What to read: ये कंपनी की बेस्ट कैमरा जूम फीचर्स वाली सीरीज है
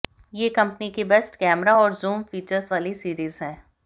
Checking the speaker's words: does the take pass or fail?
fail